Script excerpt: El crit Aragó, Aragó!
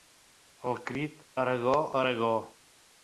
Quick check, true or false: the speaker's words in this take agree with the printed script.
true